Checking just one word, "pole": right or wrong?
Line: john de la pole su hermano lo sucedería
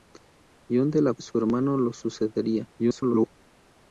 wrong